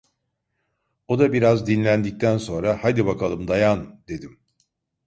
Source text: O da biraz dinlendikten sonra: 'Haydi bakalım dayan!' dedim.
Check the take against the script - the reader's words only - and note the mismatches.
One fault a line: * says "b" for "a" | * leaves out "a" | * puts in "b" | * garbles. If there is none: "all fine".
all fine